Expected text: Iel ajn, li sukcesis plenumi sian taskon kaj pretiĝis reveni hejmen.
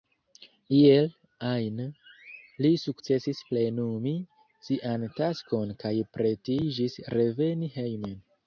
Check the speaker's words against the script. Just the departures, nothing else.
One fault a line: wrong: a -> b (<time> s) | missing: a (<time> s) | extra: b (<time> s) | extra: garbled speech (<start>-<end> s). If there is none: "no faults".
no faults